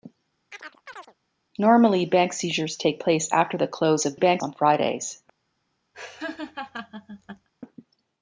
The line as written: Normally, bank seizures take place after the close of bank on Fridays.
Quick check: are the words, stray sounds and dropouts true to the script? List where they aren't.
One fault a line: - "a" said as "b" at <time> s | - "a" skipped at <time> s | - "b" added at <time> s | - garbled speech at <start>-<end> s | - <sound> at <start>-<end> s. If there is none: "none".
- chirp at 0.5-1.1 s
- laugh at 5.9-7.5 s